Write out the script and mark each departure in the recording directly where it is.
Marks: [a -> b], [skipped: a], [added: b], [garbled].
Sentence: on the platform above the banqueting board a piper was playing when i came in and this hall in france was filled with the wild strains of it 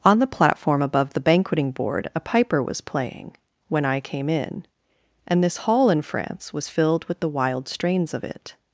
on the platform above the banqueting board a piper was playing when i came in and this hall in france was filled with the wild strains of it